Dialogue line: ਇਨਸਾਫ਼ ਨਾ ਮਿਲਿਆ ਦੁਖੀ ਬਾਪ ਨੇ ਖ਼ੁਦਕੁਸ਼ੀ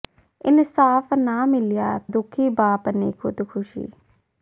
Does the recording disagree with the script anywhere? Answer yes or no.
no